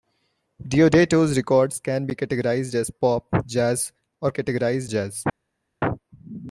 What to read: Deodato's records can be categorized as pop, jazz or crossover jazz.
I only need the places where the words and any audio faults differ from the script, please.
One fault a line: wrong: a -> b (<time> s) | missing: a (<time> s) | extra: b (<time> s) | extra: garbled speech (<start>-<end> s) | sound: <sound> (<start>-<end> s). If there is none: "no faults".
wrong: crossover -> categorized (4.3 s)